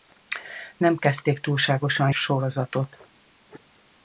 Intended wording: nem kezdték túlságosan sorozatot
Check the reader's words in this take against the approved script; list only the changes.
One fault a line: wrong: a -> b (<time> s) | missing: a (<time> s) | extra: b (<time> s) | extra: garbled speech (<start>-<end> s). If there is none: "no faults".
no faults